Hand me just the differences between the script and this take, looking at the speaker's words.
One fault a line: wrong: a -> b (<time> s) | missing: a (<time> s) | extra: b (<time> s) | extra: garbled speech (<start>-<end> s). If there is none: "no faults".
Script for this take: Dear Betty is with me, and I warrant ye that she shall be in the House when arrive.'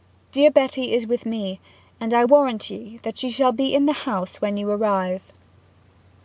extra: you (4.6 s)